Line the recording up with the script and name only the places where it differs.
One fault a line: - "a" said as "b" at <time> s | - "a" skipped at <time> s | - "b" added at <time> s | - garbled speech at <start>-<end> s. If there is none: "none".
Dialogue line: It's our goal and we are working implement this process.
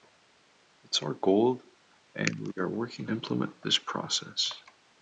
none